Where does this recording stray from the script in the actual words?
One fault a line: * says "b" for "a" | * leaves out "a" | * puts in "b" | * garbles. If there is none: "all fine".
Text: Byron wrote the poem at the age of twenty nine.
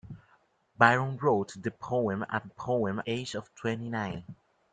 * says "poem" for "the"